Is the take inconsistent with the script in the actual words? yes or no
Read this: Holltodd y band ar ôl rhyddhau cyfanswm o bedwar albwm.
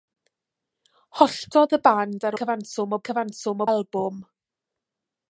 yes